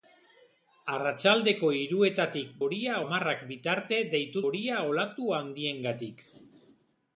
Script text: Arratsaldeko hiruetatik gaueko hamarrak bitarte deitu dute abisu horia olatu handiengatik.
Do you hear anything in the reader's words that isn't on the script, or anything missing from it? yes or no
yes